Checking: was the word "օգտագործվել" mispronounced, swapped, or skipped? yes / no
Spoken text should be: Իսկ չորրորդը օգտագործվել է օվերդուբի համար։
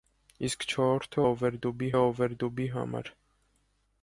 yes